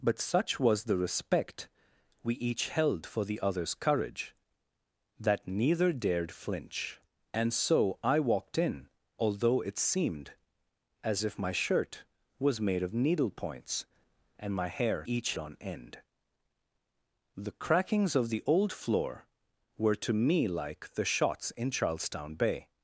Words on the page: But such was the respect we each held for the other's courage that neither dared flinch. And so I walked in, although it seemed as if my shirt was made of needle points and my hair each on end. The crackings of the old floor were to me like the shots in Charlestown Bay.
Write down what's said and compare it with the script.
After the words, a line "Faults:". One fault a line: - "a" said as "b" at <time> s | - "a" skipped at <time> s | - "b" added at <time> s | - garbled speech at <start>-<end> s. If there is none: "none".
But such was the respect we each held for the other's courage that neither dared flinch. And so I walked in, although it seemed as if my shirt was made of needle points and my hair each on end. The crackings of the old floor were to me like the shots in Charlestown Bay.
Faults:
none